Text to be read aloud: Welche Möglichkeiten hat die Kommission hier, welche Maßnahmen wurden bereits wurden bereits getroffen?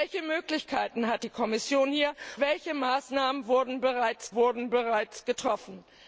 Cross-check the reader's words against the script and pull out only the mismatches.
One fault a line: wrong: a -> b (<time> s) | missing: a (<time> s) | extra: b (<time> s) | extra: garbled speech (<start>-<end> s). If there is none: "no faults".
no faults